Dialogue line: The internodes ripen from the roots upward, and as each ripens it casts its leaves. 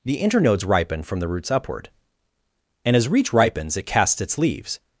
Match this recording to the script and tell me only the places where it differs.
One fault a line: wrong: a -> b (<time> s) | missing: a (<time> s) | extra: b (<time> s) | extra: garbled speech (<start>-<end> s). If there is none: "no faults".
wrong: each -> reach (3.1 s)